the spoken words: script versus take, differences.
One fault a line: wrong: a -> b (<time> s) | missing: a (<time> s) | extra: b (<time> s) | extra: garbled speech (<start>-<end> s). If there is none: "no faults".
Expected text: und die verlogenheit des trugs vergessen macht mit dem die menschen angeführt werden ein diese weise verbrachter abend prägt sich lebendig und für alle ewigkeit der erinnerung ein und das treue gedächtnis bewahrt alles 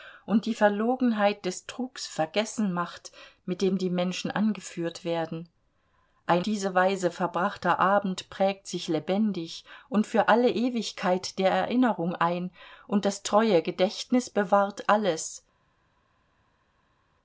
no faults